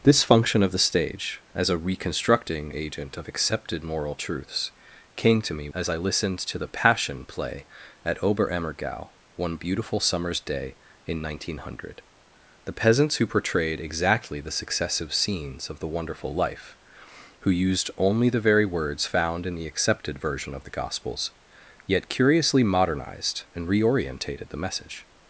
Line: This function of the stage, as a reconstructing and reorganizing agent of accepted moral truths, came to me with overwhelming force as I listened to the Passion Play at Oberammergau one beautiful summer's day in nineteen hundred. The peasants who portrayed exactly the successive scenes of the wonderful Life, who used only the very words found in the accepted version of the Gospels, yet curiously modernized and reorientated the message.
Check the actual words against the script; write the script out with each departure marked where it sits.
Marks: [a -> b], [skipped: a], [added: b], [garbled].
This function of the stage, as a reconstructing [skipped: and reorganizing] agent of accepted moral truths, came to me [skipped: with overwhelming force] as I listened to the Passion Play at Oberammergau one beautiful summer's day in nineteen hundred. The peasants who portrayed exactly the successive scenes of the wonderful Life, who used only the very words found in the accepted version of the Gospels, yet curiously modernized and reorientated the message.